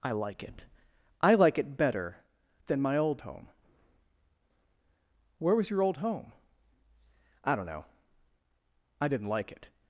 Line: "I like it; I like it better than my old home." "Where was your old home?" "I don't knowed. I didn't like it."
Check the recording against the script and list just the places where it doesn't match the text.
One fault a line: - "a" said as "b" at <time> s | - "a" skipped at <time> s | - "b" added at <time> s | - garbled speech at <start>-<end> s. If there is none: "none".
- "knowed" said as "know" at 7.7 s